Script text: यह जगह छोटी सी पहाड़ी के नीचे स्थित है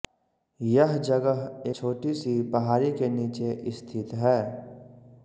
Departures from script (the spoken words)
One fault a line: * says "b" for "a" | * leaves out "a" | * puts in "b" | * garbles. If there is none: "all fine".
all fine